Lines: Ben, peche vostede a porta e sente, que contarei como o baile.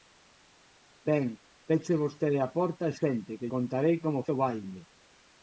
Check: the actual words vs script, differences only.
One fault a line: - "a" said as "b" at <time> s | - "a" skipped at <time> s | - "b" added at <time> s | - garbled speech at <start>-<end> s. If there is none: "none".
none